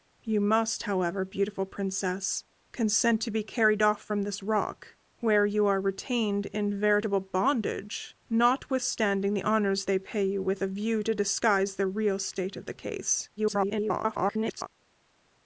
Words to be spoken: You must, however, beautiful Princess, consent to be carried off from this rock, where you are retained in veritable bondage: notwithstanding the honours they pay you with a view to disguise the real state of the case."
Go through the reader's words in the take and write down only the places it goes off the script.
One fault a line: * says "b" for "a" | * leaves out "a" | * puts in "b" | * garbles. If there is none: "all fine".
* garbles